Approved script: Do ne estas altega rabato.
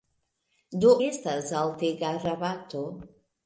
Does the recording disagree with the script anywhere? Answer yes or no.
yes